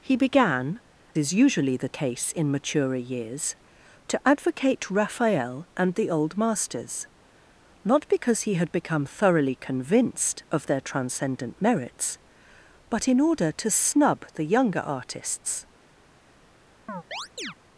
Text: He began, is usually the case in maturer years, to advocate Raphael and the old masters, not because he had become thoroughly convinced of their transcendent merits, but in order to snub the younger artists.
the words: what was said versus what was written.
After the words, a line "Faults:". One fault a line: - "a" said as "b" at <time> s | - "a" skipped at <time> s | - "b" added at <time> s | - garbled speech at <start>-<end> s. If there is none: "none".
He began, is usually the case in maturer years, to advocate Raphael and the old masters, not because he had become thoroughly convinced of their transcendent merits, but in order to snub the younger artists.
Faults:
none